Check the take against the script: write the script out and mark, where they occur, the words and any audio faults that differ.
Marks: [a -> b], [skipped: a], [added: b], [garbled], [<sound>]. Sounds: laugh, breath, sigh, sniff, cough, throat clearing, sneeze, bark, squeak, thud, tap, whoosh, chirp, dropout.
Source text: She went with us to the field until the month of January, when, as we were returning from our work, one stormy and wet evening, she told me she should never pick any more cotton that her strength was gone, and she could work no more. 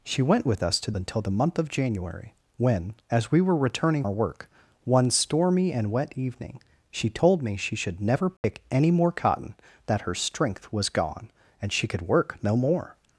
She went with us to [skipped: the field] until the month of January, when, as we were returning [skipped: from] our work, one stormy and wet evening, she told me she should never pick [dropout] any more cotton that her strength was gone, and she could work no more.